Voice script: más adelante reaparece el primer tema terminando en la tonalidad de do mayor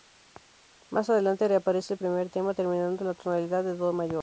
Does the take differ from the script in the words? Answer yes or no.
no